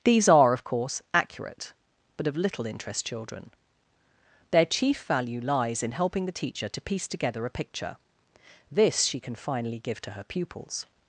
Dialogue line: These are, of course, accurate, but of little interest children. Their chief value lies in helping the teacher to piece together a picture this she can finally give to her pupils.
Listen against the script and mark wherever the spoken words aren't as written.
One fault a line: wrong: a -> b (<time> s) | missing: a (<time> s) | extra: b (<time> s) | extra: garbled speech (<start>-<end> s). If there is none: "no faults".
no faults